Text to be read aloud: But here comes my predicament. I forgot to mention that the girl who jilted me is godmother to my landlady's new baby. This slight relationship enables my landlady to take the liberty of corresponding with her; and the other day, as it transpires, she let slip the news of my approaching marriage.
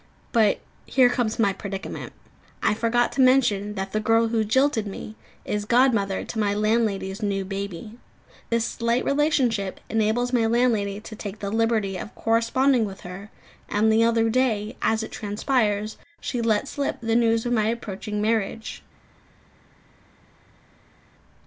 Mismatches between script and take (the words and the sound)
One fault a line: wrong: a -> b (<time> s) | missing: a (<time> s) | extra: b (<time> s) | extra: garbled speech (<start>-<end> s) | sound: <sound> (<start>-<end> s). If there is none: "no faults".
no faults